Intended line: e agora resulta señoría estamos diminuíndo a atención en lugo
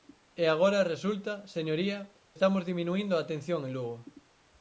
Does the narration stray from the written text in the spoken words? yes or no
no